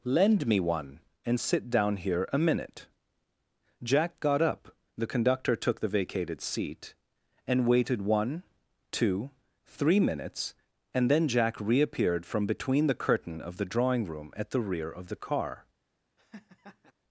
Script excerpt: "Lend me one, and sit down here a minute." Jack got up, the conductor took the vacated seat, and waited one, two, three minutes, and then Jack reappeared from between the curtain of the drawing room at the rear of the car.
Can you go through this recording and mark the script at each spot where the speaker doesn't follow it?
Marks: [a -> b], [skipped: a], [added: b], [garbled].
"Lend me one, and sit down here a minute." Jack got up, the conductor took the vacated seat, and waited one, two, three minutes, and then Jack reappeared from between the curtain of the drawing room at the rear of the car.